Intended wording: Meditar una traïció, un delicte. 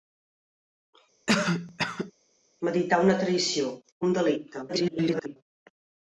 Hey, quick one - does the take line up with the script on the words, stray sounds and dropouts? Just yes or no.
no